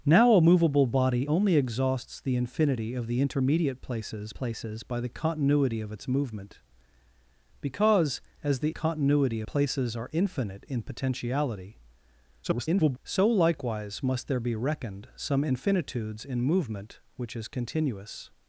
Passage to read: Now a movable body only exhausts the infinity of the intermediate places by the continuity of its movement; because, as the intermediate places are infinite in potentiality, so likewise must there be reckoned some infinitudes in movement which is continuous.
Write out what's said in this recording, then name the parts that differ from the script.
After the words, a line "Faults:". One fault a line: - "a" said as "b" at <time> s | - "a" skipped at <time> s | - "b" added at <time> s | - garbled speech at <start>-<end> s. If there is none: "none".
Now a movable body only exhausts the infinity of the intermediate places places by the continuity of its movement; because, as the continuity places are infinite in potentiality, [garbled] so likewise must there be reckoned some infinitudes in movement which is continuous.
Faults:
- "places" added at 4.3 s
- "intermediate" said as "continuity" at 8.7 s
- garbled speech at 12.4-13.0 s